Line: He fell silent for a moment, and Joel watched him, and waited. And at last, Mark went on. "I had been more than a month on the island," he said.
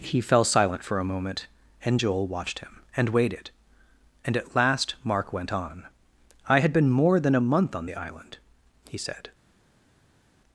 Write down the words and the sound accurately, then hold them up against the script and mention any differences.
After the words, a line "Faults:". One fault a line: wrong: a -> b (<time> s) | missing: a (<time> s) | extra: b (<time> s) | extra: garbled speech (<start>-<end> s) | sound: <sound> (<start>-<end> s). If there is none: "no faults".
He fell silent for a moment, and Joel watched him, and waited. And at last, Mark went on. "I had been more than a month on the island," he said.
Faults:
no faults